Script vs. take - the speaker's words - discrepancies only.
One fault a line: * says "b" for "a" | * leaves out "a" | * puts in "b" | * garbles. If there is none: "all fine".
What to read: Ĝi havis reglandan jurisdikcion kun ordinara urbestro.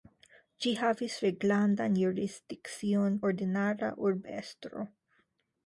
* leaves out "kun"